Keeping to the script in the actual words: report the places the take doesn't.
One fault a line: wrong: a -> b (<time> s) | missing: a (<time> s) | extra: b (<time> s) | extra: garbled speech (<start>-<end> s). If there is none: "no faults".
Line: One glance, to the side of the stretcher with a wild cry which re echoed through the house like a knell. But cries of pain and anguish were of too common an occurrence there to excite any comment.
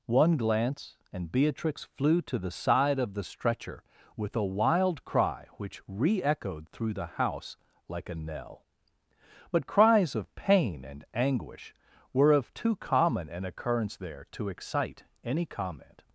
extra: and Beatrix flew (1.1 s)